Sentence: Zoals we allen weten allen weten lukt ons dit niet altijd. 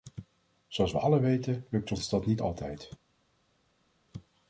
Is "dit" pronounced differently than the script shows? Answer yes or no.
yes